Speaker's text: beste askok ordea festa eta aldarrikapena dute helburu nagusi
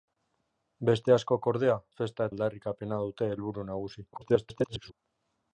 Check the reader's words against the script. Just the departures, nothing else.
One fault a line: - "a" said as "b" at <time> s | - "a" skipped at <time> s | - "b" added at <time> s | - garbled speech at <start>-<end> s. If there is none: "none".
- "eta" skipped at 2.3 s
- garbled speech at 4.1-4.9 s